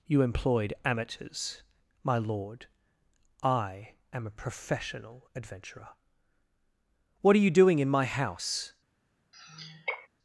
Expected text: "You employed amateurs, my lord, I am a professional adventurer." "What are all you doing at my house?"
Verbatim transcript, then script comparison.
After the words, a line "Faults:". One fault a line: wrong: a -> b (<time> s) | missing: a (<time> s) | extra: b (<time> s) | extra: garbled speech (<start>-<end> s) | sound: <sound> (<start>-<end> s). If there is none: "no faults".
"You employed amateurs, my lord, I am a professional adventurer." "What are you doing in my house?"
Faults:
missing: all (7.4 s)
wrong: at -> in (7.8 s)
sound: sigh (9.3-10.1 s)